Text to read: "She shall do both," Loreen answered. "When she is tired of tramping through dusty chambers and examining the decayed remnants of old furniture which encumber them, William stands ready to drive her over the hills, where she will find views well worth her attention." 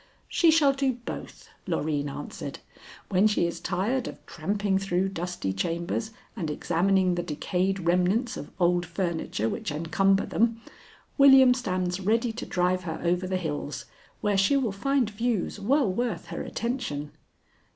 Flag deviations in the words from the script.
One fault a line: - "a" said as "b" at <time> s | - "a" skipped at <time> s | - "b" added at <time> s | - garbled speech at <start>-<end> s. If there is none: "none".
none